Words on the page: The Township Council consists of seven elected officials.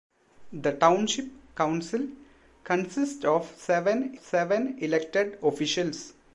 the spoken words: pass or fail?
fail